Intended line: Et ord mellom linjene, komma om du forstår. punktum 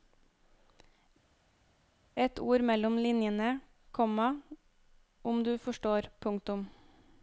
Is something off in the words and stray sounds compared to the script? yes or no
no